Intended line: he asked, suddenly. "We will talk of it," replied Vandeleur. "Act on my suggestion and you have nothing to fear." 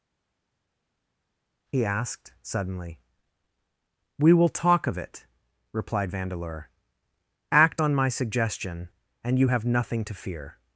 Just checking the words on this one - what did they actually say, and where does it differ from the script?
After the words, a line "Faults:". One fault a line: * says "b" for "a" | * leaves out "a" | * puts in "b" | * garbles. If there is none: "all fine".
he asked, suddenly. "We will talk of it," replied Vandeleur. "Act on my suggestion and you have nothing to fear."
Faults:
all fine